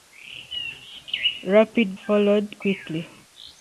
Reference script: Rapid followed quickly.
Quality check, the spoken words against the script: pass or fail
pass